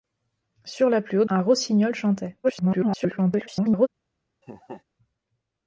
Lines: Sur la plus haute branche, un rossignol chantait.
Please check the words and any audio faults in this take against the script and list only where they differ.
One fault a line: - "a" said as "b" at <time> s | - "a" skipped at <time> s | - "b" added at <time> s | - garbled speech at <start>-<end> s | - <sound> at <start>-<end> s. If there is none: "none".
- "branche" skipped at 1.3 s
- garbled speech at 2.4-3.9 s
- laugh at 4.4-4.8 s